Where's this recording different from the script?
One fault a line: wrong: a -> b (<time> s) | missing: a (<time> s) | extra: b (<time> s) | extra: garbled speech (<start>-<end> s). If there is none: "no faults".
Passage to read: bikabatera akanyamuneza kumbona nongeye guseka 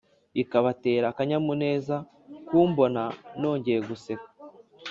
no faults